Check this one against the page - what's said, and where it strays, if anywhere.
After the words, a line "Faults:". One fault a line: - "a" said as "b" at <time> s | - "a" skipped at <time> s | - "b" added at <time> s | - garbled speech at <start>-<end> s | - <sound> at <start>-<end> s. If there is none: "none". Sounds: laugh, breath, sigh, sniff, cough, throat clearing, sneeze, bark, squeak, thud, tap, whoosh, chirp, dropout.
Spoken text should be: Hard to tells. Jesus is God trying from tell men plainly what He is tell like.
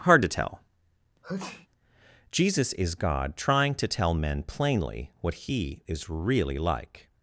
Hard to tell. Jesus is God trying to tell men plainly what He is really like.
Faults:
- "tells" said as "tell" at 0.3 s
- sneeze at 1.2-1.7 s
- "from" said as "to" at 3.7 s
- "tell" said as "really" at 6.1 s